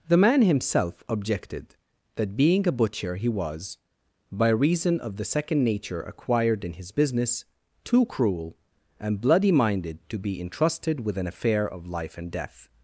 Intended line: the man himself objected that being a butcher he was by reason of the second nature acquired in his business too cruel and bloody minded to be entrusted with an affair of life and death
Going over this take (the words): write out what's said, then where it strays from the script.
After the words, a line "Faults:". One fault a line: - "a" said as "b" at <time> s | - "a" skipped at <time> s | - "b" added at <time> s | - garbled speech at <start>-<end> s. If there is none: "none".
the man himself objected that being a butcher he was by reason of the second nature acquired in his business too cruel and bloody minded to be entrusted with an affair of life and death
Faults:
none